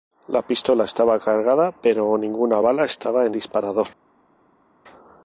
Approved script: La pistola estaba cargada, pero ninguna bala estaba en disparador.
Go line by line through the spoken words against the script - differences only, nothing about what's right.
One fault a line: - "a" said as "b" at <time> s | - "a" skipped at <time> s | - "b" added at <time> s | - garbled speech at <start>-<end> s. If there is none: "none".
none